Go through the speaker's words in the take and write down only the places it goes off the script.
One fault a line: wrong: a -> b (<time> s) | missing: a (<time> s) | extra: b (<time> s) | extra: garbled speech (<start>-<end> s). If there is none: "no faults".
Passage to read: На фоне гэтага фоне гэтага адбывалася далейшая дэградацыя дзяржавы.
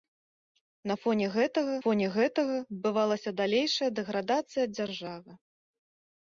no faults